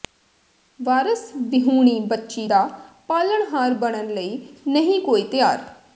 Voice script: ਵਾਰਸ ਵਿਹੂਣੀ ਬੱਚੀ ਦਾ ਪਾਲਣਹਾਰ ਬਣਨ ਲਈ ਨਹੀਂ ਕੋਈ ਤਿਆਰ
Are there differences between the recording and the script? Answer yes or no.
no